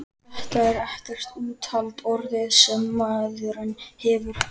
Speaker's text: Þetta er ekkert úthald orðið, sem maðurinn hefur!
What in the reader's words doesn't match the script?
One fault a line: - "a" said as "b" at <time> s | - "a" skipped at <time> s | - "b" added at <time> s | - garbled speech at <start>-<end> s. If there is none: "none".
none